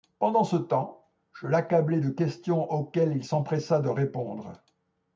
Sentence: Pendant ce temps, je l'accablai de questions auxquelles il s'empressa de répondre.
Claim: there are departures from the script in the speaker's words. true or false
false